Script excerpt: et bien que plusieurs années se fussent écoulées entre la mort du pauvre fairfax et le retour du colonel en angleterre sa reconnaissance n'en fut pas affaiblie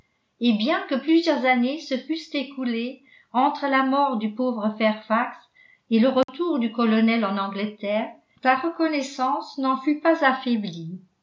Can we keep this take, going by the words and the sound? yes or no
no